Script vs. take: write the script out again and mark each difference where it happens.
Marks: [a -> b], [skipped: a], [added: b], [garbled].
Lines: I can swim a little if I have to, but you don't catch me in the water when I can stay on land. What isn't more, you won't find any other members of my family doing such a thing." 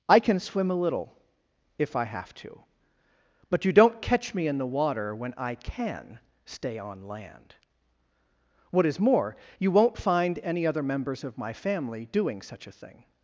I can swim a little if I have to, but you don't catch me in the water when I can stay on land. What [isn't -> is] more, you won't find any other members of my family doing such a thing."